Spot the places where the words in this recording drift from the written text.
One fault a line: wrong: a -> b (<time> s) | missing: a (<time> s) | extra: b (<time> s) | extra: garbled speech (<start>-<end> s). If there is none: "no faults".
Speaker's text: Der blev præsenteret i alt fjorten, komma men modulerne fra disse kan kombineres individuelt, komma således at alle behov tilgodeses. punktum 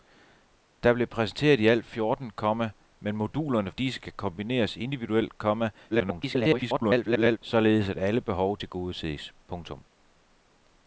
missing: fra (3.7 s)
extra: garbled speech (5.9-7.4 s)